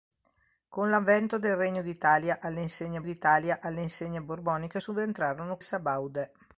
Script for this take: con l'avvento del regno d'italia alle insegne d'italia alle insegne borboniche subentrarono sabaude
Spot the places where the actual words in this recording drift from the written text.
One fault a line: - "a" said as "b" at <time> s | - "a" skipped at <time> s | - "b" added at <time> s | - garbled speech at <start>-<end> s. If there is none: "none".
none